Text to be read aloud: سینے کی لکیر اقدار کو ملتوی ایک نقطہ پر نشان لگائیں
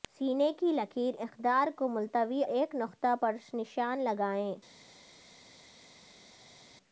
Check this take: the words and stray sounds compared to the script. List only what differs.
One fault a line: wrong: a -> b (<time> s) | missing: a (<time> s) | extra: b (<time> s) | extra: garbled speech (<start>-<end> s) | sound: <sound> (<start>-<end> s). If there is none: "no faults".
no faults